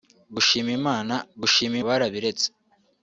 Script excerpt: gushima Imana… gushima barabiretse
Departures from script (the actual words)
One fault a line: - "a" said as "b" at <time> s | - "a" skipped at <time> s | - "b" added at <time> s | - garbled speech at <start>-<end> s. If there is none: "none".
none